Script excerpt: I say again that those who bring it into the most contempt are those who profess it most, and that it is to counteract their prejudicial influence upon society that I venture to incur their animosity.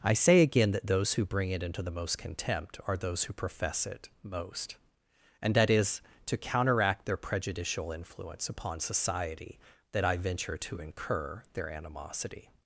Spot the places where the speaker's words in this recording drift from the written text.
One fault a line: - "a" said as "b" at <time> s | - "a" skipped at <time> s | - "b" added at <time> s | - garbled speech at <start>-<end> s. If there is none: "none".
- "it" skipped at 5.7 s